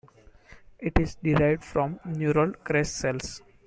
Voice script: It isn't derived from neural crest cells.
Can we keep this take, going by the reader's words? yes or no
no